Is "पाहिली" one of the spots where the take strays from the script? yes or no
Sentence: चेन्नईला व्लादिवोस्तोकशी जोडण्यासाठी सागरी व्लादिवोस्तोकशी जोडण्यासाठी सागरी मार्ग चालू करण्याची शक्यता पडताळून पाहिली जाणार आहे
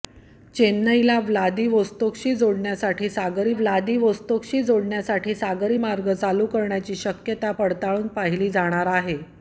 no